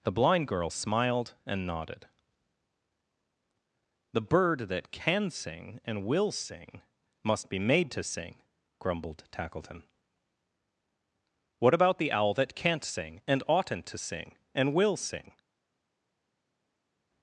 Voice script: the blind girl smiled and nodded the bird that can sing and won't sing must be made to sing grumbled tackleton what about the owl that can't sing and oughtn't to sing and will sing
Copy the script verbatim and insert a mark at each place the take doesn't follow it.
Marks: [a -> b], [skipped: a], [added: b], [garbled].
the blind girl smiled and nodded the bird that can sing and [won't -> will] sing must be made to sing grumbled tackleton what about the owl that can't sing and oughtn't to sing and will sing